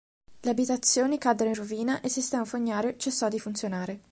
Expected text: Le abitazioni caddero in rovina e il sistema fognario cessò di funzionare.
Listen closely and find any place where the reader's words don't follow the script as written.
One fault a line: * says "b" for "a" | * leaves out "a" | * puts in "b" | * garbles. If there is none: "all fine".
all fine